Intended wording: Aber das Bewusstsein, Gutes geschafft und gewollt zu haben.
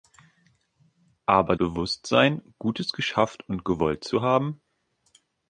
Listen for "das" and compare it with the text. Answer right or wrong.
wrong